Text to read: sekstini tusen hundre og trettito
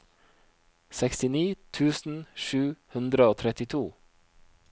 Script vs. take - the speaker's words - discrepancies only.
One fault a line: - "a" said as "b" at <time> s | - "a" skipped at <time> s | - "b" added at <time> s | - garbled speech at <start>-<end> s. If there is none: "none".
- "sju" added at 2.5 s